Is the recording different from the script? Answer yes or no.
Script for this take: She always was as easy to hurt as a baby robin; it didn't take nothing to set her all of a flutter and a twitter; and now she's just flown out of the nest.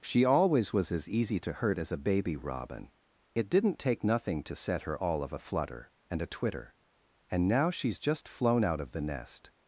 no